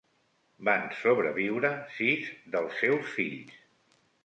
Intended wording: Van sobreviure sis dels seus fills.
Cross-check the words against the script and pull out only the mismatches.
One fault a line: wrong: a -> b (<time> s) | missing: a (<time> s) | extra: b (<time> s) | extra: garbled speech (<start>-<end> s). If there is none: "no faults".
no faults